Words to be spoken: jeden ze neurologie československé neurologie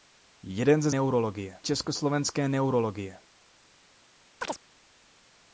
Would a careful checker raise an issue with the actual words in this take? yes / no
no